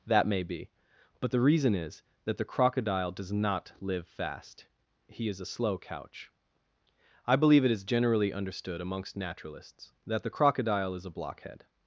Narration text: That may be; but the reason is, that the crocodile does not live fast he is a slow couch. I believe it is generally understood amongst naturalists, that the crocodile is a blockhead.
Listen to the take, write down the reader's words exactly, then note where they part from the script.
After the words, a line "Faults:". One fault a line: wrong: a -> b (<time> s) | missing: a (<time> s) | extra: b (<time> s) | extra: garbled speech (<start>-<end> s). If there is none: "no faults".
That may be; but the reason is, that the crocodile does not live fast he is a slow couch. I believe it is generally understood amongst naturalists, that the crocodile is a blockhead.
Faults:
no faults